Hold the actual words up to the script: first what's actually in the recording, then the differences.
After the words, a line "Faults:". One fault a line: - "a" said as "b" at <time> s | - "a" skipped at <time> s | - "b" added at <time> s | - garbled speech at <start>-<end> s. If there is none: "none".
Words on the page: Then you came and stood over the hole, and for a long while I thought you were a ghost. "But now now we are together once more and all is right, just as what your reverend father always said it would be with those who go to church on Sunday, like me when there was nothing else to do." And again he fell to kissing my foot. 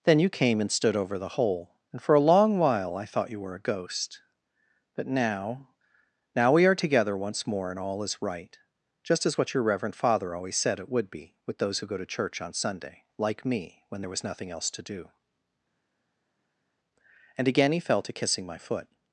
Then you came and stood over the hole, and for a long while I thought you were a ghost. "But now now we are together once more and all is right, just as what your reverend father always said it would be with those who go to church on Sunday, like me when there was nothing else to do." And again he fell to kissing my foot.
Faults:
none